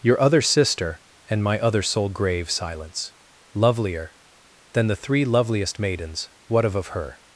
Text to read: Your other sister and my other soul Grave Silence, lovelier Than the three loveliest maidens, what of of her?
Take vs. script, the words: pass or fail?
pass